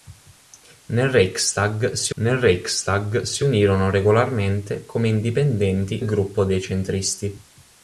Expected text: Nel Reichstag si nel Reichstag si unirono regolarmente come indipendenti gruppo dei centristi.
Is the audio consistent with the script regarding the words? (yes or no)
yes